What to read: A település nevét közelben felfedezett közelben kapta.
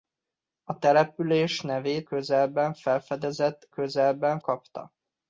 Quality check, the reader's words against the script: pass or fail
pass